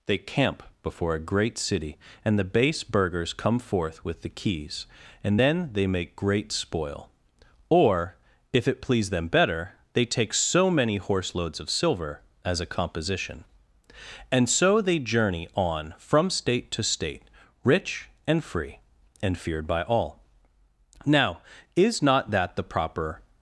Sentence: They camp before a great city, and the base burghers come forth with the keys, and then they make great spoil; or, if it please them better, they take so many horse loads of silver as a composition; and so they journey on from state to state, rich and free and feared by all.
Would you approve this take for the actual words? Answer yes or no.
no